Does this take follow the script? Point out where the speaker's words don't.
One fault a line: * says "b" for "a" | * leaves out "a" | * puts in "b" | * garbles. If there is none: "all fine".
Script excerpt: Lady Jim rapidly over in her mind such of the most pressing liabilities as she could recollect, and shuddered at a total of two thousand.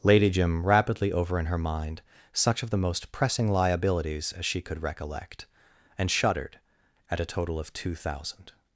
all fine